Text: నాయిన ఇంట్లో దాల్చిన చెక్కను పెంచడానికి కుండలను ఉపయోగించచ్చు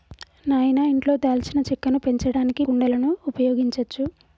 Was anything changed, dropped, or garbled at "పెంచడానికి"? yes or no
no